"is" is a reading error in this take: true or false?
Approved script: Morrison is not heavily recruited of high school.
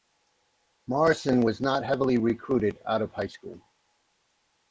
true